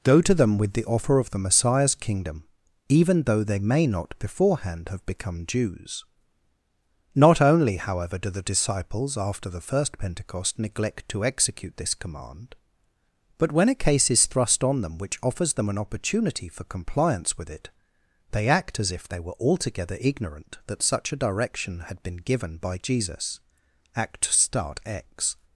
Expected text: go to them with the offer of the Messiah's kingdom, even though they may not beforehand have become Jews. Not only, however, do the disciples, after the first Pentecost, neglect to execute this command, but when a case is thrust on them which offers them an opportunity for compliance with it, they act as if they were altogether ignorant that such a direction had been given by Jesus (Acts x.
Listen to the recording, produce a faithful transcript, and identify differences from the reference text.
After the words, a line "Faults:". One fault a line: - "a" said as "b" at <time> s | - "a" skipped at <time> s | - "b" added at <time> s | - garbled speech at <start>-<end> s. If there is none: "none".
go to them with the offer of the Messiah's kingdom, even though they may not beforehand have become Jews. Not only, however, do the disciples, after the first Pentecost, neglect to execute this command, but when a case is thrust on them which offers them an opportunity for compliance with it, they act as if they were altogether ignorant that such a direction had been given by Jesus (Act start x.
Faults:
- "Acts" said as "Act start" at 23.9 s